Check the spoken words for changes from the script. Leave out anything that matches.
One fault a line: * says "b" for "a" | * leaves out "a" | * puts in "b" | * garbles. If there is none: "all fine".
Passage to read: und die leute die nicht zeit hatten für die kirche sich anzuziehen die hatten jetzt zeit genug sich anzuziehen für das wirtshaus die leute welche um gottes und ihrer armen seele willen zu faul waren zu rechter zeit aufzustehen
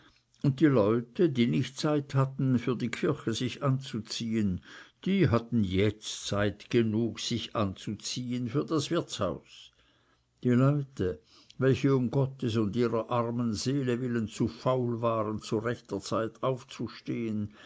all fine